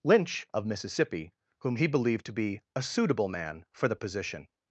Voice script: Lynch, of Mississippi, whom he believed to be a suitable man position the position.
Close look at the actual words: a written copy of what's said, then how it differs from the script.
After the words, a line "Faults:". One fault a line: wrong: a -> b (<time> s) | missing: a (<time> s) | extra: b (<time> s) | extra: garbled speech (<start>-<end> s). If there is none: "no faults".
Lynch, of Mississippi, whom he believed to be a suitable man for the position.
Faults:
wrong: position -> for (3.7 s)